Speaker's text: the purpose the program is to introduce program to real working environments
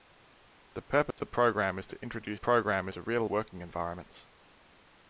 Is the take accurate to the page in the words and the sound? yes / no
no